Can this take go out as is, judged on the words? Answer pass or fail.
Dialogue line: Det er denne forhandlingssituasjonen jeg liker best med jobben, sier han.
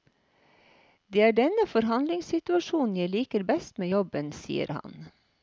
pass